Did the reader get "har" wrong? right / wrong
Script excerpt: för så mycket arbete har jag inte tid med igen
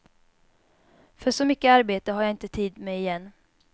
right